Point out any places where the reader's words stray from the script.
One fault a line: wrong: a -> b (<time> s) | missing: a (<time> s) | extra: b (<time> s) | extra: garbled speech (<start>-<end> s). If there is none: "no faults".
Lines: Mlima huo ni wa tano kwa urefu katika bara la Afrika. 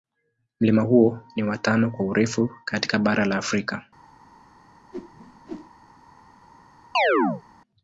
no faults